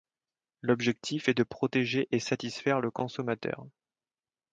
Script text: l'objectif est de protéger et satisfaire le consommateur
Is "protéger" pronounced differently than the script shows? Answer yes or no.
no